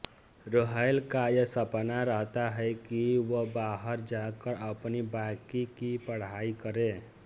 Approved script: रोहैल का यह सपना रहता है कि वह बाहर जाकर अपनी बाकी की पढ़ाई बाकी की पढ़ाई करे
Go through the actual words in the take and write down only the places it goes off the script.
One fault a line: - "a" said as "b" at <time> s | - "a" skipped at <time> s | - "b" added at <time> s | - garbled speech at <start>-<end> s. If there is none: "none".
- "बाकी की पढ़ाई" skipped at 6.5 s